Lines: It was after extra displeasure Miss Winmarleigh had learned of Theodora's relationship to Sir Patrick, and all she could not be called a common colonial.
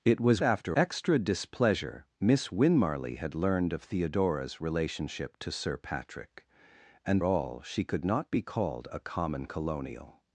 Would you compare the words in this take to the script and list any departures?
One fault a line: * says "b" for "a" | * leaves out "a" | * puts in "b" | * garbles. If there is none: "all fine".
all fine